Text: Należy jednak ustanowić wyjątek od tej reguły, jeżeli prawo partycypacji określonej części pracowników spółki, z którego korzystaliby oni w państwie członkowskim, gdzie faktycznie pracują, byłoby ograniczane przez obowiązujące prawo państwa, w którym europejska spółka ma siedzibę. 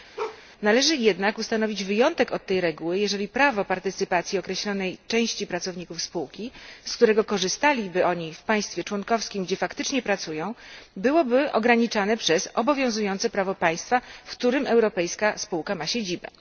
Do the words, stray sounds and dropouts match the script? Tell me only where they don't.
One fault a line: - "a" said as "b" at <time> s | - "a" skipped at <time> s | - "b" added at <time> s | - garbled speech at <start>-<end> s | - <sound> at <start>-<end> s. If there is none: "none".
- bark at 0.2-0.4 s